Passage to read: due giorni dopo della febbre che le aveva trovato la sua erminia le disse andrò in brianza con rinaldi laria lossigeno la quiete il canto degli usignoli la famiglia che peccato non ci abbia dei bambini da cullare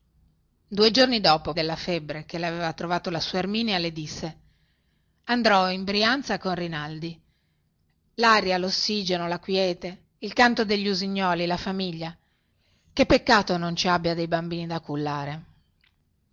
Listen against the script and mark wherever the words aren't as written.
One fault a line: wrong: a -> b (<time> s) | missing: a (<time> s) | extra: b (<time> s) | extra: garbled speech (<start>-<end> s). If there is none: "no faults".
no faults